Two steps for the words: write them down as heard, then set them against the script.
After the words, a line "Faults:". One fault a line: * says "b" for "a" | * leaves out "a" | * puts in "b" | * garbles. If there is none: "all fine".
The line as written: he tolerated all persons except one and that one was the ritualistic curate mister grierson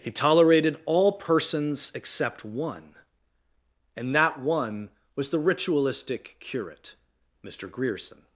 he tolerated all persons except one and that one was the ritualistic curate mister grierson
Faults:
all fine